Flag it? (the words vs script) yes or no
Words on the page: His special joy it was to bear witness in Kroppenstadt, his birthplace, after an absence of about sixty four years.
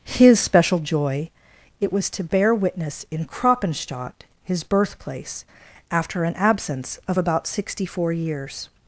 no